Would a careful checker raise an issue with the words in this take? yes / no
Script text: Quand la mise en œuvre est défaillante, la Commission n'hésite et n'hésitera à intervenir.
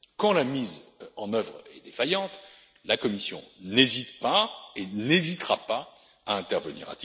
yes